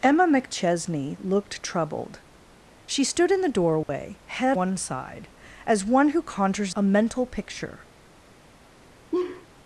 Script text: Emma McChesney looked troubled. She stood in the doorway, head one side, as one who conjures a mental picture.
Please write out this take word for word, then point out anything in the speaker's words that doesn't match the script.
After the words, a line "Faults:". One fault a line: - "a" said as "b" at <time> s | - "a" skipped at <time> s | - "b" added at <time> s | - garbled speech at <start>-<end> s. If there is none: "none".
Emma McChesney looked troubled. She stood in the doorway, head one side, as one who conjures a mental picture.
Faults:
none